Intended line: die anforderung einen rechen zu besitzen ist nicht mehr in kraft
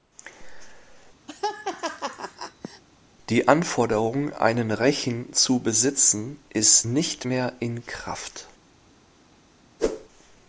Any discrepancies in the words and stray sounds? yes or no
yes